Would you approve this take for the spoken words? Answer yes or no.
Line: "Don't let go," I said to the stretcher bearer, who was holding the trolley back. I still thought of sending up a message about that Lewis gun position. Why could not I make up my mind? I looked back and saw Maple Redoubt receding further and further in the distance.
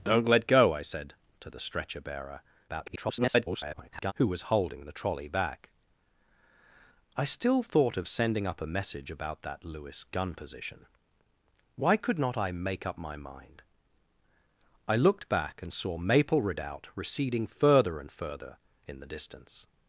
no